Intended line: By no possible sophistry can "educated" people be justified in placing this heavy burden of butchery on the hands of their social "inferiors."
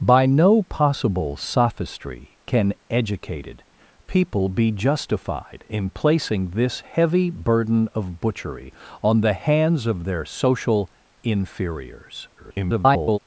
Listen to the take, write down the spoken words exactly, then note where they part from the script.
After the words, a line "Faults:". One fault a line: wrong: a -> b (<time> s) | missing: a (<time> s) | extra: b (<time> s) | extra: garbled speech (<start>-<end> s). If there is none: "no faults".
By no possible sophistry can "educated" people be justified in placing this heavy burden of butchery on the hands of their social "inferiors." [garbled]
Faults:
extra: garbled speech (12.4-13.2 s)